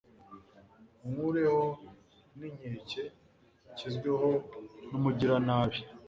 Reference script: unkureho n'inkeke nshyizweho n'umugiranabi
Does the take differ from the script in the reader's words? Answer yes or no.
no